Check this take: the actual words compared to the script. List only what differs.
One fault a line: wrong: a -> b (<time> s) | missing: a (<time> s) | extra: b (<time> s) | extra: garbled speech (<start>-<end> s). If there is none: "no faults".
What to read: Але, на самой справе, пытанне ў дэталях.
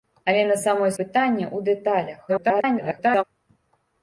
missing: справе (0.9 s)
extra: garbled speech (2.3-3.2 s)